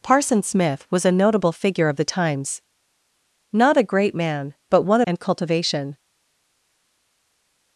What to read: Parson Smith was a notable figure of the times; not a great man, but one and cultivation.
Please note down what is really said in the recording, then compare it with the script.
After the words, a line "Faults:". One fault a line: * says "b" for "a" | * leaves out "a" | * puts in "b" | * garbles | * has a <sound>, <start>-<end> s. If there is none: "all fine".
Parson Smith was a notable figure of the times; not a great man, but one and cultivation.
Faults:
all fine